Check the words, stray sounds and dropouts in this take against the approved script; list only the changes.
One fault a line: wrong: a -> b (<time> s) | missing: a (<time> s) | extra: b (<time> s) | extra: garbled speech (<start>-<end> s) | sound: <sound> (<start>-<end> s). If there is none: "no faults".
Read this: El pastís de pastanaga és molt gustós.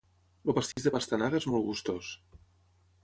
sound: dropout (0.7-0.8 s)